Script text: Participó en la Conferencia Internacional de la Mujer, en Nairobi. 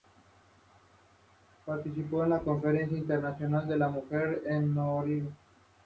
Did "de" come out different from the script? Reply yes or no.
no